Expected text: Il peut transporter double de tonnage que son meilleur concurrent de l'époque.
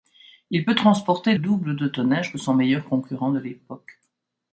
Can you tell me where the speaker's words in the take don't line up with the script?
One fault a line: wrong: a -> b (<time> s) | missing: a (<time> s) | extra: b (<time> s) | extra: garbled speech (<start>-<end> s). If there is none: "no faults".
no faults